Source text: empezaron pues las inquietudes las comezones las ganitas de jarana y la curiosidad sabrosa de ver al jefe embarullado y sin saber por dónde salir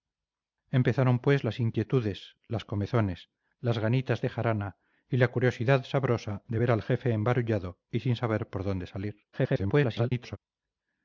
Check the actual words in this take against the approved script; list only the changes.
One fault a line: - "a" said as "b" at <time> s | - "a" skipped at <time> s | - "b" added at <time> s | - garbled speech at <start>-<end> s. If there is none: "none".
- garbled speech at 9.3-10.4 s